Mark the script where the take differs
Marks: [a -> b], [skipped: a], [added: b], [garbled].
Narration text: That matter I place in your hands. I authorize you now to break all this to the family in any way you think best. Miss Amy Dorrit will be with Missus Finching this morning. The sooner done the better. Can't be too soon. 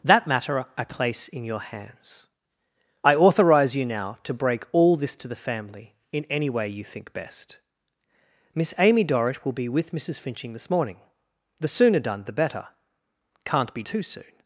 That matter I place in your hands. I authorize you now to break all this to the family in any way you think best. Miss Amy Dorrit will be with Missus Finching this morning. The sooner done the better. Can't be too soon.